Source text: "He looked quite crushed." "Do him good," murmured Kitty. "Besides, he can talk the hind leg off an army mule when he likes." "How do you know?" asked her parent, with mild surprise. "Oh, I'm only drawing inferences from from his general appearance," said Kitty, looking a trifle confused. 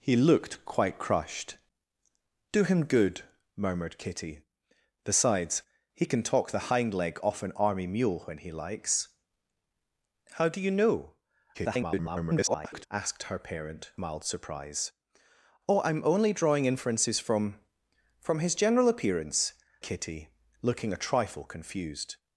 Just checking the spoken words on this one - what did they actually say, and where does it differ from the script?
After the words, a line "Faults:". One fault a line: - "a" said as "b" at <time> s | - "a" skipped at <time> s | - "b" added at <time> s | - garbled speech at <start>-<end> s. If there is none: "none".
"He looked quite crushed." "Do him good," murmured Kitty. "Besides, he can talk the hind leg off an army mule when he likes." "How do you know?" [garbled] asked her parent, mild surprise. "Oh, I'm only drawing inferences from from his general appearance," Kitty, looking a trifle confused.
Faults:
- garbled speech at 11.5-12.9 s
- "with" skipped at 13.9 s
- "said" skipped at 19.5 s